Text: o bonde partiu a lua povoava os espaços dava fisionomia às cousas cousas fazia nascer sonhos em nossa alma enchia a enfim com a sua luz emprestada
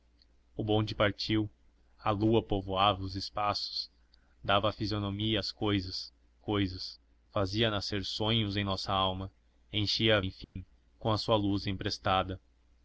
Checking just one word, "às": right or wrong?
right